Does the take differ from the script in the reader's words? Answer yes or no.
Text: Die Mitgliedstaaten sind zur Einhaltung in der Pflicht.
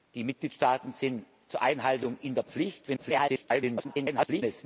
yes